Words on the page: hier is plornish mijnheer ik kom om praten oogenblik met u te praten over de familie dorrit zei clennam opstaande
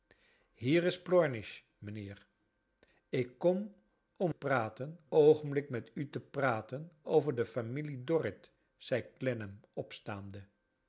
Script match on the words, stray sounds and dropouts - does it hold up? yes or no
yes